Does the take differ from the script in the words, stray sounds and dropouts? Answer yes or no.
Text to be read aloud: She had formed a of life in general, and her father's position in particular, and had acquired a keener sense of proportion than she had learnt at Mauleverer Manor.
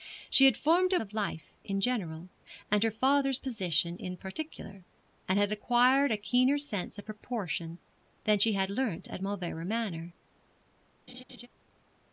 yes